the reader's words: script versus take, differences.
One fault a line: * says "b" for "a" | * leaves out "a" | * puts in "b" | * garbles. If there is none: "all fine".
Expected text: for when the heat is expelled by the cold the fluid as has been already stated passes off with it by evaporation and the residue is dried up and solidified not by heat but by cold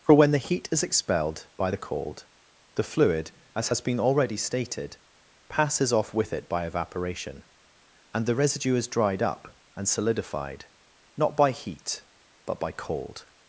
all fine